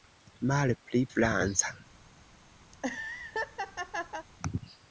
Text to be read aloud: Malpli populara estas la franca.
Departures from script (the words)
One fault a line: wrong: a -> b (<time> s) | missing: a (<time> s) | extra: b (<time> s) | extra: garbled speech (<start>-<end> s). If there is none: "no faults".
missing: populara estas la (1.0 s)